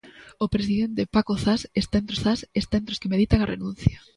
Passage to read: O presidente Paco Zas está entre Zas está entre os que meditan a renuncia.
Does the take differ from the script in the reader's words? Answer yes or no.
no